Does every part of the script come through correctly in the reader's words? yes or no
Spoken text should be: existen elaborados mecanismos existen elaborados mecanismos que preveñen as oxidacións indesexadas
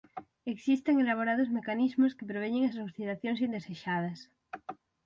no